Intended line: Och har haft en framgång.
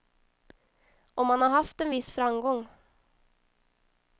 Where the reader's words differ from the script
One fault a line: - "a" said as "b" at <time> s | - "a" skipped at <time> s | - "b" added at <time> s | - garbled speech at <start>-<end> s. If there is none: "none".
- "man" added at 1.2 s
- "viss" added at 1.9 s